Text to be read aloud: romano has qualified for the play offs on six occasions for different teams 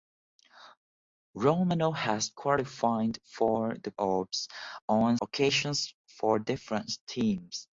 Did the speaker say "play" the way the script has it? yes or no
no